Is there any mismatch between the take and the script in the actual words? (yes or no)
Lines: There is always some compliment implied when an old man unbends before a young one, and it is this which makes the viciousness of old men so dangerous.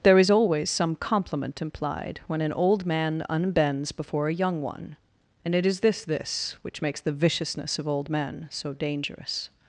yes